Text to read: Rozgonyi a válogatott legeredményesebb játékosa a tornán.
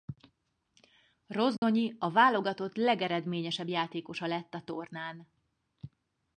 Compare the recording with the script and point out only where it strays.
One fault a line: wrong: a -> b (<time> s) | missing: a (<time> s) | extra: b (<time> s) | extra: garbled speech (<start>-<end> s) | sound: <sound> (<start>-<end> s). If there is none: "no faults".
sound: dropout (1.6-1.6 s)
extra: lett (4.3 s)